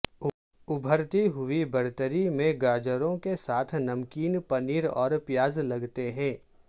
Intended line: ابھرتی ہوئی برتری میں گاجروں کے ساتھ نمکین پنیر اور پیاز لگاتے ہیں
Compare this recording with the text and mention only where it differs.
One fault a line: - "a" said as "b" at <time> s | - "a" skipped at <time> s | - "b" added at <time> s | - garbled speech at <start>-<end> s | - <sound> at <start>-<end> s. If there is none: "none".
none